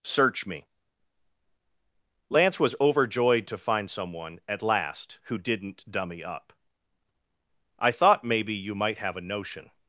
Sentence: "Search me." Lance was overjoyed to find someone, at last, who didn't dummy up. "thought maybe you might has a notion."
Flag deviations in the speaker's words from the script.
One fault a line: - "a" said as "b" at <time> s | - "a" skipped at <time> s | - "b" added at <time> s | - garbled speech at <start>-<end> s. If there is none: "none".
- "I" added at 7.8 s
- "has" said as "have" at 9.0 s